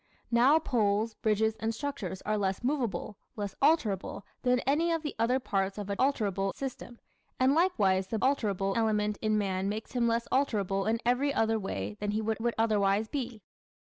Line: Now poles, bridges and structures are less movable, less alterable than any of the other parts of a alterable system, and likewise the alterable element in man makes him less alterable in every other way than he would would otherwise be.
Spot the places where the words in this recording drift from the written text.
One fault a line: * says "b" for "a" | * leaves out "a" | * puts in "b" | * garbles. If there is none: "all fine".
all fine